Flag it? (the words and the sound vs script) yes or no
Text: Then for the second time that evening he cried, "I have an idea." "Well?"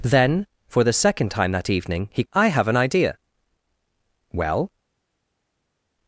yes